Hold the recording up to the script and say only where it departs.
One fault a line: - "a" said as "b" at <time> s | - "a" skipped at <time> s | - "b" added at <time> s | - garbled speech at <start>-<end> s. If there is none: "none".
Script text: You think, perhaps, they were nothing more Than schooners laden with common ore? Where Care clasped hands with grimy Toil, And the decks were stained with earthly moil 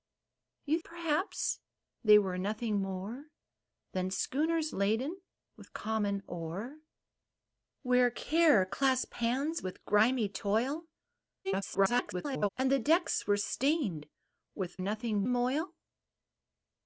- "think" skipped at 0.8 s
- garbled speech at 11.4-12.5 s
- "earthly" said as "nothing" at 14.8 s